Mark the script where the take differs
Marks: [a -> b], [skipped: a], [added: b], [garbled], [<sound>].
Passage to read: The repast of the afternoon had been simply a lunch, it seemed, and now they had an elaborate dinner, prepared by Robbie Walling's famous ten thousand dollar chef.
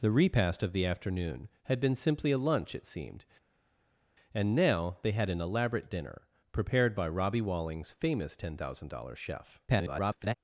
The repast of the afternoon had been simply a lunch, it seemed, and now they had an elaborate dinner, prepared by Robbie Walling's famous ten thousand dollar chef. [garbled]